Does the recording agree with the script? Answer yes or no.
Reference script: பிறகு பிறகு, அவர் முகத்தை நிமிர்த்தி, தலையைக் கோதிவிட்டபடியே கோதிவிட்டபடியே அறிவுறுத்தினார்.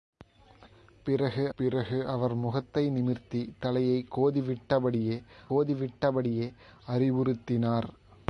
yes